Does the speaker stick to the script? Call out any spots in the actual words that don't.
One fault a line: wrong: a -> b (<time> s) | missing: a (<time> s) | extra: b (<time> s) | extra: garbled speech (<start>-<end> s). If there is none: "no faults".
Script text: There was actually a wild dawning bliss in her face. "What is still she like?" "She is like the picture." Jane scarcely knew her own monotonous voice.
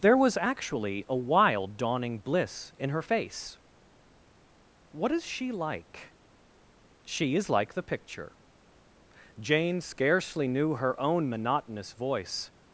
missing: still (5.3 s)